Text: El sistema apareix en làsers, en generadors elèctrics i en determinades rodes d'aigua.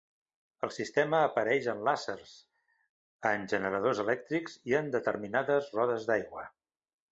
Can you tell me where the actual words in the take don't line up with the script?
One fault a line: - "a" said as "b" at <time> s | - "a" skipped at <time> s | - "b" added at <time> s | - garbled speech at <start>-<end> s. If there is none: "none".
none